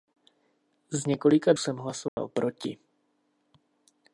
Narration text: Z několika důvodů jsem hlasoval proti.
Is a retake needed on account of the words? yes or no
yes